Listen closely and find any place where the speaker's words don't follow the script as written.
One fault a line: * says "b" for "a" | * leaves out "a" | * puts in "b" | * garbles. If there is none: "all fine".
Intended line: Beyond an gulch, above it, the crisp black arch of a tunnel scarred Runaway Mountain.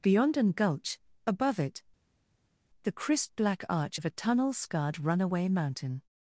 all fine